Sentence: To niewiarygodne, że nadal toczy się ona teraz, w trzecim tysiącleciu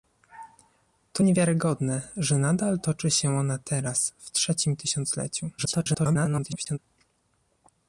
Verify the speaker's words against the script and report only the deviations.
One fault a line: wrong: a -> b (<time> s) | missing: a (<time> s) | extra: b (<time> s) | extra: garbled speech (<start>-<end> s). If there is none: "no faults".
extra: garbled speech (5.6-6.8 s)